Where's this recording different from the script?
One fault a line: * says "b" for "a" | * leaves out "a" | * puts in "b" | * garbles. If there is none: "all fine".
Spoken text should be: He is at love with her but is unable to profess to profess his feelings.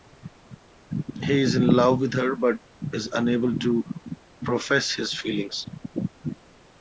* says "in" for "at"
* leaves out "to profess"